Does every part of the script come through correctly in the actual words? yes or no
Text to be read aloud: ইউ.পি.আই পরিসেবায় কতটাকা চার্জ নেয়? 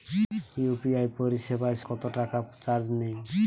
yes